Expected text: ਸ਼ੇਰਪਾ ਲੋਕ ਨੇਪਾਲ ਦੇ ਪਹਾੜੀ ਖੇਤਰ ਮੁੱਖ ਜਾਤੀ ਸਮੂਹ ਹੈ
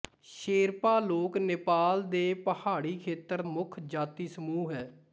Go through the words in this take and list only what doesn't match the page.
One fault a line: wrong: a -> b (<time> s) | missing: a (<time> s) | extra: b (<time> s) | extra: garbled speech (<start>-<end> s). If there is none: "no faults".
no faults